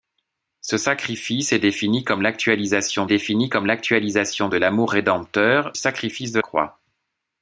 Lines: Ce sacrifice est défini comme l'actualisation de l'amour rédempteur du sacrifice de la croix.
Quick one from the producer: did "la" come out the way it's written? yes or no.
no